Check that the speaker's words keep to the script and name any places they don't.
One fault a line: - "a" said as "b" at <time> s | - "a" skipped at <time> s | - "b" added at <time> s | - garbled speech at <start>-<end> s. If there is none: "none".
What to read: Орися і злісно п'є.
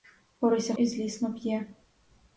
none